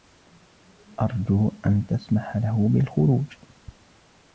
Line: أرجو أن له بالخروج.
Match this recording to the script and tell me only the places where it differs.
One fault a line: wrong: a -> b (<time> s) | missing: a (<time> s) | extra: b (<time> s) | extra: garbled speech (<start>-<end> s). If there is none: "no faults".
extra: تسمح (1.9 s)